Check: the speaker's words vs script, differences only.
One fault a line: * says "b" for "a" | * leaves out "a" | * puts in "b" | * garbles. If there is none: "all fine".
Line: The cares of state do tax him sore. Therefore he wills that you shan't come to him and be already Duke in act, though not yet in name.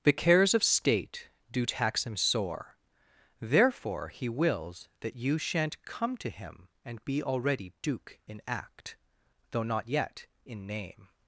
all fine